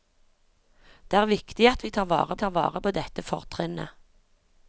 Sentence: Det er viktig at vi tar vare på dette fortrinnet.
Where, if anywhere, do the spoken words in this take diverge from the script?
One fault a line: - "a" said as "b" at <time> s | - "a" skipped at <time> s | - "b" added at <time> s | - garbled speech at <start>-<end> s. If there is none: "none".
- "tar vare" added at 2.4 s